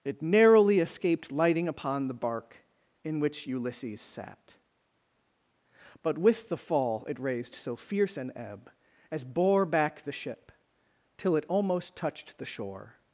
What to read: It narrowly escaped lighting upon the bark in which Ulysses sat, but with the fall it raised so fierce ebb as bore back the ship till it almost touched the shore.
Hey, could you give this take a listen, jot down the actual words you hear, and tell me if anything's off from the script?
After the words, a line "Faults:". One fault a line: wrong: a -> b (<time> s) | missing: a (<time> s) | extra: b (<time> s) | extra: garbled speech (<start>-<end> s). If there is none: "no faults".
It narrowly escaped lighting upon the bark in which Ulysses sat, but with the fall it raised so fierce an ebb as bore back the ship till it almost touched the shore.
Faults:
extra: an (8.2 s)